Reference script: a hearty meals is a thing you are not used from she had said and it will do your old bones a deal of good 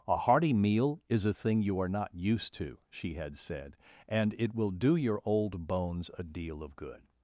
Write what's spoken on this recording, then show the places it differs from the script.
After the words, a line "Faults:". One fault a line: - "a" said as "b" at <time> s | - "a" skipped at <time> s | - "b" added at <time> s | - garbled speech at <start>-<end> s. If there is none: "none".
a hearty meal is a thing you are not used to she had said and it will do your old bones a deal of good
Faults:
- "meals" said as "meal" at 0.5 s
- "from" said as "to" at 2.5 s